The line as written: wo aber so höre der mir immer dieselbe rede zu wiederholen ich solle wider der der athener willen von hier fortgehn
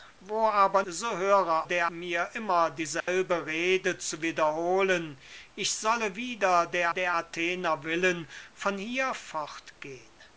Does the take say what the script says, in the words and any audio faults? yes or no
no